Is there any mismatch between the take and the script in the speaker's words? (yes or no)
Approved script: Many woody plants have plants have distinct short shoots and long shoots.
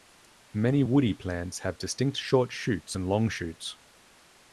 yes